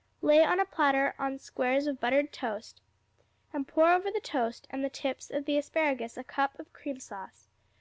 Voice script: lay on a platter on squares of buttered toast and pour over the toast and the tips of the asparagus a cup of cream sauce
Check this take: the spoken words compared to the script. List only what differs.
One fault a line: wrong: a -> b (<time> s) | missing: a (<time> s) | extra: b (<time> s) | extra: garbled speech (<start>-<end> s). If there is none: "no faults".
no faults